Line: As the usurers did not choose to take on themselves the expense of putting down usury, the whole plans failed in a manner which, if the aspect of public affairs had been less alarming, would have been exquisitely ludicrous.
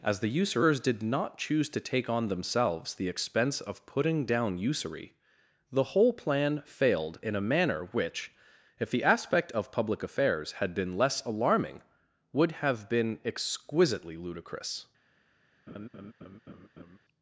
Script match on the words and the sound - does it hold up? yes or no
no